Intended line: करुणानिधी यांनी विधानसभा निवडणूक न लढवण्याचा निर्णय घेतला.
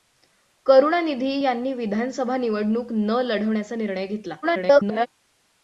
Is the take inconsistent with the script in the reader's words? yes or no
yes